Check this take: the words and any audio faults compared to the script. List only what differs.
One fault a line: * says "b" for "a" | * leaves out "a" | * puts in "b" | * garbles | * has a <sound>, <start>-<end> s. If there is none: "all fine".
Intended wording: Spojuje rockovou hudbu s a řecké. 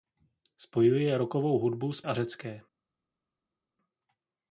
all fine